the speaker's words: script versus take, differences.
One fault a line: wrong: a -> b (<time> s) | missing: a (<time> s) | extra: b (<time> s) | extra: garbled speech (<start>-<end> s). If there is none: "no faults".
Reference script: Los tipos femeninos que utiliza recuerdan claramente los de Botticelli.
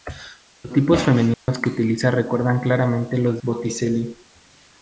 missing: de (3.4 s)